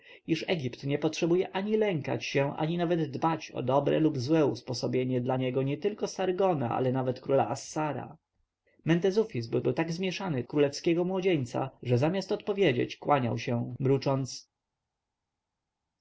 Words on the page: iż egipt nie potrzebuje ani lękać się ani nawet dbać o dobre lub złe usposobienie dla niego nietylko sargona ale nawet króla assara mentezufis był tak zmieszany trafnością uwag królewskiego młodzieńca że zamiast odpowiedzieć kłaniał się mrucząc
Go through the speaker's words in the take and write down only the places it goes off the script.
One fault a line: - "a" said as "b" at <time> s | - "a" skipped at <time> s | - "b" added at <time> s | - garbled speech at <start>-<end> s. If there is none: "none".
- "był" added at 9.6 s
- "trafnością uwag" skipped at 10.4 s